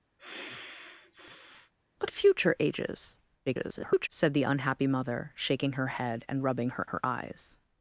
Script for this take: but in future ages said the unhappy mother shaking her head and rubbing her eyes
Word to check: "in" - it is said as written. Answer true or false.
false